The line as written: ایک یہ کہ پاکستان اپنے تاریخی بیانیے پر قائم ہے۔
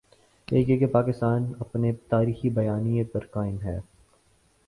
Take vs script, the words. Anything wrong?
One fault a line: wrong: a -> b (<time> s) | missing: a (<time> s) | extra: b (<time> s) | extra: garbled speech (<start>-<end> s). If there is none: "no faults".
no faults